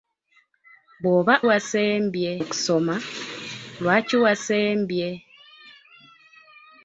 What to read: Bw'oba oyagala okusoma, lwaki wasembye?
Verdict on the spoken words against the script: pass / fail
fail